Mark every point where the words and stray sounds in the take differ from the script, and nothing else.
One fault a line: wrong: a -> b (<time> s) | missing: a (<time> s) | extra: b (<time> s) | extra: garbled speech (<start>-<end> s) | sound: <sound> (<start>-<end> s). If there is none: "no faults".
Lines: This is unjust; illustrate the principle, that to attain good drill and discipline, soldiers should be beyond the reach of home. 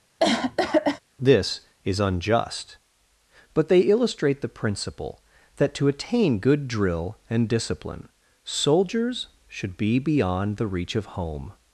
sound: cough (0.2-1.0 s)
extra: but they (3.5 s)